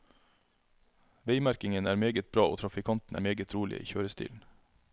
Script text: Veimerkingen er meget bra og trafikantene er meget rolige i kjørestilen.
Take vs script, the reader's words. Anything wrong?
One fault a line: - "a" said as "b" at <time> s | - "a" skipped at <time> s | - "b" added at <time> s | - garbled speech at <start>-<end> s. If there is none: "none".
none